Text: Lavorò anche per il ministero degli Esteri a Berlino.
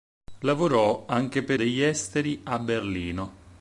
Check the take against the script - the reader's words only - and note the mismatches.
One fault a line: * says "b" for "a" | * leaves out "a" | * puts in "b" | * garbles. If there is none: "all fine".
* leaves out "il ministero"